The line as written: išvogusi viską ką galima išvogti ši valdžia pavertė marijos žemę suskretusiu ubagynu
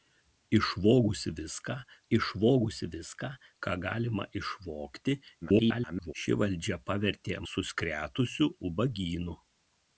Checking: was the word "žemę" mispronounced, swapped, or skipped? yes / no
yes